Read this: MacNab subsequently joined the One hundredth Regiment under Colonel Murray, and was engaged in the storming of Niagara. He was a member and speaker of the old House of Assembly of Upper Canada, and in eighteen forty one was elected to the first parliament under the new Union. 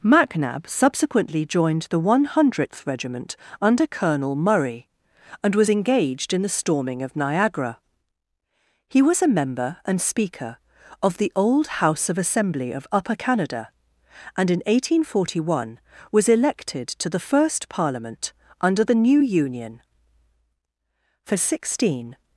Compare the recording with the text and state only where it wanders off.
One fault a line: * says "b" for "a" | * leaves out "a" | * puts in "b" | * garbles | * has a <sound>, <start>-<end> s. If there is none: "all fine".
* puts in "For sixteen"